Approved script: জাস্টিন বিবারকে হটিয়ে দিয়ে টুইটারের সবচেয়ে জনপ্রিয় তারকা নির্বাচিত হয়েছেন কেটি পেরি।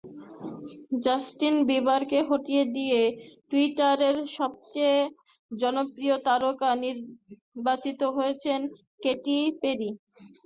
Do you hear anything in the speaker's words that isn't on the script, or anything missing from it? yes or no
no